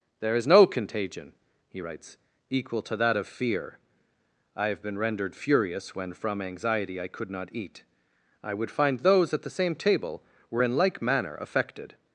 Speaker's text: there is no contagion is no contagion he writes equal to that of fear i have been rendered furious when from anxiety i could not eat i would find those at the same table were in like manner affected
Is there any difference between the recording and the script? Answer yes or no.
yes